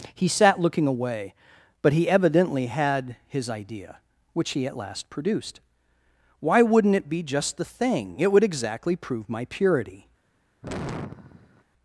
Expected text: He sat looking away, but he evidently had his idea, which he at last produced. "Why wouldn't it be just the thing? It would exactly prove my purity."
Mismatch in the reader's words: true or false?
false